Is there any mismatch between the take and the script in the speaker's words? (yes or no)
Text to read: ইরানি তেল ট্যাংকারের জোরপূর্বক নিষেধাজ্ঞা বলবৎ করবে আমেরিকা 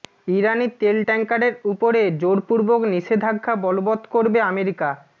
yes